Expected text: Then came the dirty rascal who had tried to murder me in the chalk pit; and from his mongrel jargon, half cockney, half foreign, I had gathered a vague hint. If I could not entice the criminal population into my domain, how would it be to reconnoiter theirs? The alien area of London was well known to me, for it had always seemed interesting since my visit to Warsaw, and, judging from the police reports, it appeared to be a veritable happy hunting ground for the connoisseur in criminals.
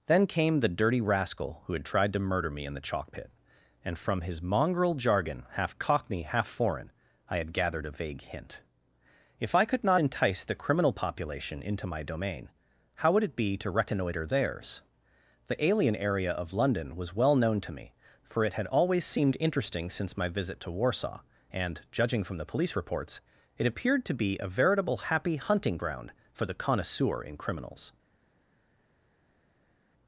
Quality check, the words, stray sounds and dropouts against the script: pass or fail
pass